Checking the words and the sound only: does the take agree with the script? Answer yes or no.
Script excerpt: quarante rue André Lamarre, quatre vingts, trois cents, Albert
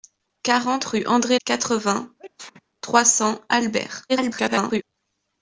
no